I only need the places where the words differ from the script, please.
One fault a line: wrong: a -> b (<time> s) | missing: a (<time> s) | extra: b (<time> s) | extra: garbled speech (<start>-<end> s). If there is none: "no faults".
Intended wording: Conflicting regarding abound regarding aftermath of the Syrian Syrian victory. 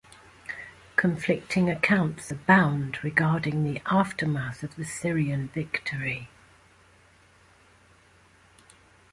wrong: regarding -> accounts (1.7 s)
extra: the (3.6 s)
missing: Syrian (5.5 s)